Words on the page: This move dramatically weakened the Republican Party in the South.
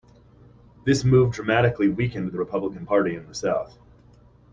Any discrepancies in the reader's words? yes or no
no